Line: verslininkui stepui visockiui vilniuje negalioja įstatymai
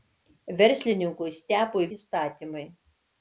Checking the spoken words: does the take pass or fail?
fail